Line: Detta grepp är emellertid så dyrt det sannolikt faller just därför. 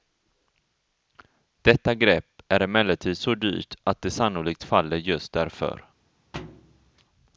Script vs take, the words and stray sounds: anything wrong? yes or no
yes